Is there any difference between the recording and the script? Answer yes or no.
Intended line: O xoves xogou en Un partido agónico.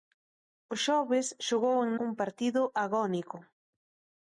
no